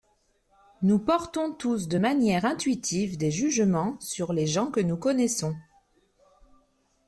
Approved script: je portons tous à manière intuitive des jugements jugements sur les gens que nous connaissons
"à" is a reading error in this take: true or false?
true